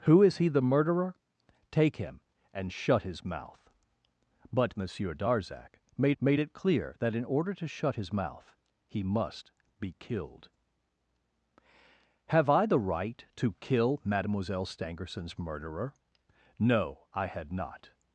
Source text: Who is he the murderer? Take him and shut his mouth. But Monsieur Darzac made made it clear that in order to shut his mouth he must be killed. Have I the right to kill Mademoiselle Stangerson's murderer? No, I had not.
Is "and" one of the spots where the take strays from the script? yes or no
no